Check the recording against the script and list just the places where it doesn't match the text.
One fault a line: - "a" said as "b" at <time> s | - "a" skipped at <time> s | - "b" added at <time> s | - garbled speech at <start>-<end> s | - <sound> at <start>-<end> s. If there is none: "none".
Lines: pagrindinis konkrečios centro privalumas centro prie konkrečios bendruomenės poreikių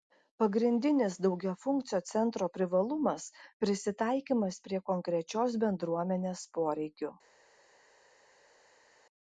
- "konkrečios" said as "daugiafunkcio" at 1.2 s
- "centro" said as "prisitaikymas" at 3.6 s